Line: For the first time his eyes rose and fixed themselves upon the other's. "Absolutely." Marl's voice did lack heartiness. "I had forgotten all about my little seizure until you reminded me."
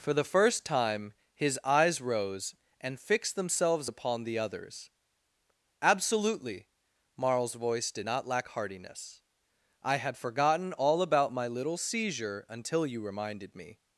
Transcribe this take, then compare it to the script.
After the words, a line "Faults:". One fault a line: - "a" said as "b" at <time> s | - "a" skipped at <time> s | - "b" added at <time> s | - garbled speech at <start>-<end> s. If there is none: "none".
For the first time his eyes rose and fixed themselves upon the other's. "Absolutely." Marl's voice did not lack heartiness. "I had forgotten all about my little seizure until you reminded me."
Faults:
- "not" added at 8.0 s